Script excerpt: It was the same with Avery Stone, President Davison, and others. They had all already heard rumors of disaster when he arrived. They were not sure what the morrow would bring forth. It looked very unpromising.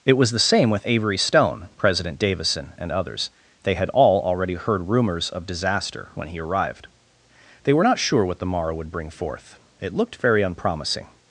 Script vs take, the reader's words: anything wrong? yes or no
no